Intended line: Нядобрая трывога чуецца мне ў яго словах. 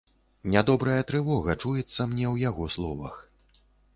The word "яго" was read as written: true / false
true